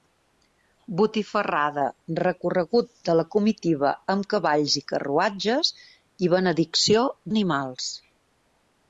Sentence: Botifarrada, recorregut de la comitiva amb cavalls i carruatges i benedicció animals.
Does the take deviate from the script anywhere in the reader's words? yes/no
no